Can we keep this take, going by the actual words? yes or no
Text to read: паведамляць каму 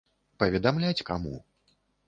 yes